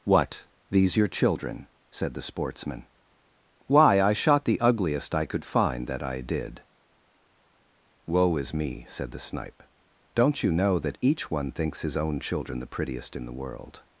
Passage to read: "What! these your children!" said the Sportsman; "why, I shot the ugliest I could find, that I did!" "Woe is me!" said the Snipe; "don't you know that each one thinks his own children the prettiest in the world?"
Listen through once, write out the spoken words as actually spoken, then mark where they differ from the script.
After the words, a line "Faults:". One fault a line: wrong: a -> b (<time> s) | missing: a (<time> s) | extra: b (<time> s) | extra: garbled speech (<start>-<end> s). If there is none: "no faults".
"What! these your children!" said the Sportsman; "why, I shot the ugliest I could find, that I did!" "Woe is me!" said the Snipe; "don't you know that each one thinks his own children the prettiest in the world?"
Faults:
no faults